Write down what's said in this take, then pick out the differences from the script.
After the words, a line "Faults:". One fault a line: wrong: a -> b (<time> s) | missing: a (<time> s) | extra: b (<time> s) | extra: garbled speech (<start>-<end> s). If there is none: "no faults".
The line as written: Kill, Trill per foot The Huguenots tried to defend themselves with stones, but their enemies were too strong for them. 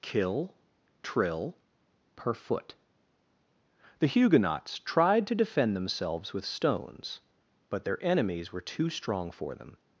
Kill, Trill per foot The Huguenots tried to defend themselves with stones, but their enemies were too strong for them.
Faults:
no faults